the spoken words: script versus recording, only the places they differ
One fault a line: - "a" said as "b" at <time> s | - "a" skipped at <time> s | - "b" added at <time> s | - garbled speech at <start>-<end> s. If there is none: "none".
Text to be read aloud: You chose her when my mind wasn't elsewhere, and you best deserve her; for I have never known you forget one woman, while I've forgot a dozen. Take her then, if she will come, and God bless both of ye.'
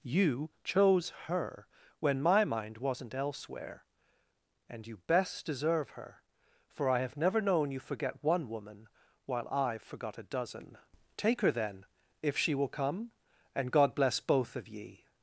none